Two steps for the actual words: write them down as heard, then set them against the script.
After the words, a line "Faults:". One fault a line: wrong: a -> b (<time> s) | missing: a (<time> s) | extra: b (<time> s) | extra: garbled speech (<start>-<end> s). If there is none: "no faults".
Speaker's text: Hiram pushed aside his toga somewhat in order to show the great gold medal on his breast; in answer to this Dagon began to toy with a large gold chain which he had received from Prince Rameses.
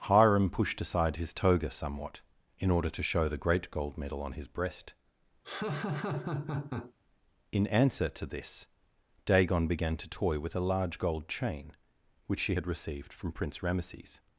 Hiram pushed aside his toga somewhat in order to show the great gold medal on his breast; in answer to this Dagon began to toy with a large gold chain which she had received from Prince Rameses.
Faults:
wrong: he -> she (12.4 s)